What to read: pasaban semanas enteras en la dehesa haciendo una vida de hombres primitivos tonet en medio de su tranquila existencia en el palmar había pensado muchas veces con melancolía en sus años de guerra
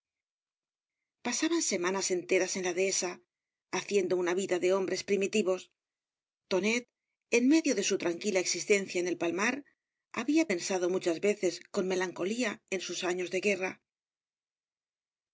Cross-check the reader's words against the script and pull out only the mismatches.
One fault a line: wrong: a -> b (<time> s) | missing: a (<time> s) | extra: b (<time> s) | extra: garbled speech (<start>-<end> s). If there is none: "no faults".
no faults